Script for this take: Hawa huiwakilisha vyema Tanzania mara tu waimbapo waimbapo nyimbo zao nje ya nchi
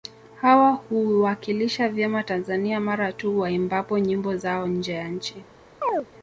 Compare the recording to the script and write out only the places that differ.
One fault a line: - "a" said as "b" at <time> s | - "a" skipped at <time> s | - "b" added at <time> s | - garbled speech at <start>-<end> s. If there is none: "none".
- "waimbapo" skipped at 4.0 s